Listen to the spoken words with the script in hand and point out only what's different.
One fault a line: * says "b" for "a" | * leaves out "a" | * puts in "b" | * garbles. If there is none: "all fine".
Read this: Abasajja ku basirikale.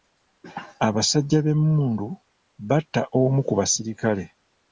* puts in "b'emmundu batta omu"